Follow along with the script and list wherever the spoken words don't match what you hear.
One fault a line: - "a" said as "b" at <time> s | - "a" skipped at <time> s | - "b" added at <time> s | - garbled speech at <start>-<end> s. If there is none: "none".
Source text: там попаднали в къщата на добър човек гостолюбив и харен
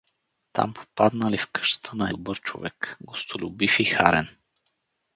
none